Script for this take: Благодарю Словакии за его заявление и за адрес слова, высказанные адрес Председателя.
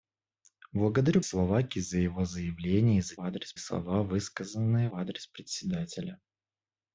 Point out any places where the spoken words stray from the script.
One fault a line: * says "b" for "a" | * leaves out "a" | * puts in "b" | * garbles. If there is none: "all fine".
all fine